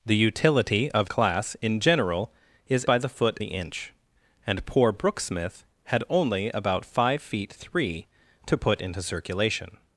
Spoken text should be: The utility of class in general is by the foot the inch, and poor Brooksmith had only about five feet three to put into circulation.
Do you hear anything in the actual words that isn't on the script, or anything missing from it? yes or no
no